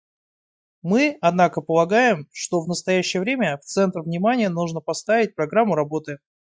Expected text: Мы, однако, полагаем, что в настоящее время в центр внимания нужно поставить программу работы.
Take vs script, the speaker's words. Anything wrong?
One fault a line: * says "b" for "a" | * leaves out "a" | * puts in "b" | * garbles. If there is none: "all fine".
all fine